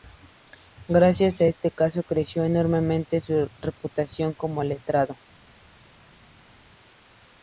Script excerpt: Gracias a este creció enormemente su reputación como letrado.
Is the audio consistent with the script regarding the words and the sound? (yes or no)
no